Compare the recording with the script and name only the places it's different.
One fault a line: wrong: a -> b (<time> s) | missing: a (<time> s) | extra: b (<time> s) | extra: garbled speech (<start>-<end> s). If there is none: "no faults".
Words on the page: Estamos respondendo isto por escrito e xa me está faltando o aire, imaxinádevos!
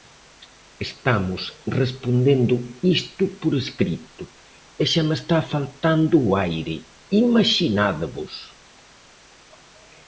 no faults